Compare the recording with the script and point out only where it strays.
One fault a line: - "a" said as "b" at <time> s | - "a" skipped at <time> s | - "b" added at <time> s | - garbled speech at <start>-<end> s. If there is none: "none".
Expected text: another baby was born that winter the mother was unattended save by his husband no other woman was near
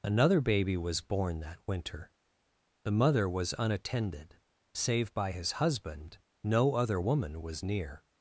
none